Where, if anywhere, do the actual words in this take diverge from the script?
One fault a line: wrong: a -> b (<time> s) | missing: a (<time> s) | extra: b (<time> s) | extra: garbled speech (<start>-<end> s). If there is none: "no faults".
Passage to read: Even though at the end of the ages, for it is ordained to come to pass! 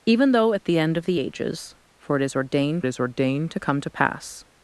extra: is ordained (2.9 s)